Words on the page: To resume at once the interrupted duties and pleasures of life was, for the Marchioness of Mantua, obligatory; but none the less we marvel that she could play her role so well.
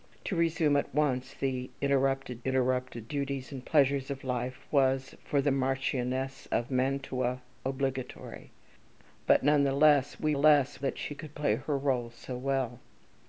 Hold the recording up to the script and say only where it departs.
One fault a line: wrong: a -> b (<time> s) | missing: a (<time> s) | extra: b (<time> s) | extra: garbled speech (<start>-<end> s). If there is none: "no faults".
extra: interrupted (2.4 s)
wrong: marvel -> less (10.3 s)